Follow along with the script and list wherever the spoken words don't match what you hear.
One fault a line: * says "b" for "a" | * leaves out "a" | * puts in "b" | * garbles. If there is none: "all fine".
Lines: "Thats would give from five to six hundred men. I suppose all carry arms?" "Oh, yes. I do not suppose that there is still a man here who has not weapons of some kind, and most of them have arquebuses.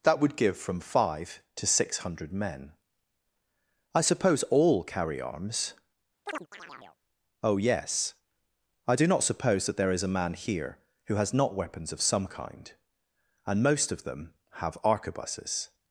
* says "That" for "Thats"
* leaves out "still"